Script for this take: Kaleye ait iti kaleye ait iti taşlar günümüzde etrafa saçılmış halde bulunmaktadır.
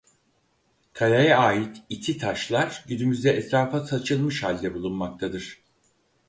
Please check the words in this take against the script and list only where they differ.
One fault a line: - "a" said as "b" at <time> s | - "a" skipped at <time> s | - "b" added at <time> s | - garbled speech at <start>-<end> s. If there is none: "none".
- "kaleye ait iti" skipped at 2.2 s